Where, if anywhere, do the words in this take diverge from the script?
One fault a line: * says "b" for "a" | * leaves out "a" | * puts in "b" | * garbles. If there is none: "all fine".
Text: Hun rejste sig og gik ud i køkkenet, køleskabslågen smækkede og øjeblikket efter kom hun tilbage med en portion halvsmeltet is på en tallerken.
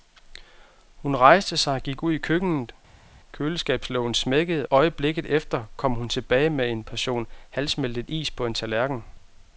* leaves out "og"